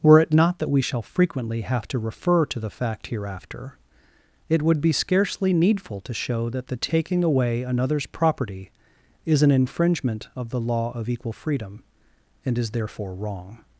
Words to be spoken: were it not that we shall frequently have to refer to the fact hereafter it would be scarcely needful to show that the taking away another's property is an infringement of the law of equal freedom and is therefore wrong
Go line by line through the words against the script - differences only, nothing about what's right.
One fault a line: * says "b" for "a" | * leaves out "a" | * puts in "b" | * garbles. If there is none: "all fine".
all fine